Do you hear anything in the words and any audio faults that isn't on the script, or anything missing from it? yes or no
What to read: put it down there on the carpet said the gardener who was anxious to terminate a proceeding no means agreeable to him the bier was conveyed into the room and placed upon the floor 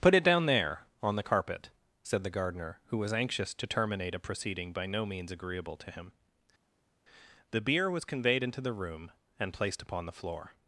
yes